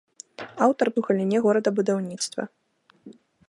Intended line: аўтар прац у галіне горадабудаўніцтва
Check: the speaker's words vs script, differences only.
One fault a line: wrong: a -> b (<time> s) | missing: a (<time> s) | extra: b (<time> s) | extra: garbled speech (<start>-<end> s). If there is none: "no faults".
missing: прац (0.9 s)